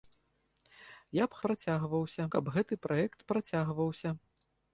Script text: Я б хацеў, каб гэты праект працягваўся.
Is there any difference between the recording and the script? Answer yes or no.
yes